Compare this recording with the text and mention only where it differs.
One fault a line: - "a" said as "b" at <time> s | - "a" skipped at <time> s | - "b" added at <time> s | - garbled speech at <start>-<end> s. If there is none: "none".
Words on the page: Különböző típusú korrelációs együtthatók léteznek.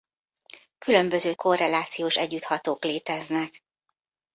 - "típusú" skipped at 1.3 s